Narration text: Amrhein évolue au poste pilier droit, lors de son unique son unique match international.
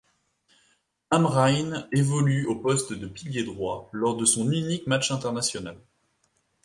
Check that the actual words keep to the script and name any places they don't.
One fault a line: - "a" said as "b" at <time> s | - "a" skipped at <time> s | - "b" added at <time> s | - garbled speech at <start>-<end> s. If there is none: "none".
- "de" added at 2.9 s
- "son unique" skipped at 4.9 s